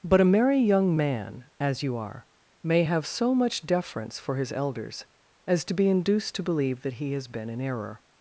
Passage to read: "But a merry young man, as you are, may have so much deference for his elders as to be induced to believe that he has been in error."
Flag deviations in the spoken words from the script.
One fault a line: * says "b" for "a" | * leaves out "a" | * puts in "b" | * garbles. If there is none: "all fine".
all fine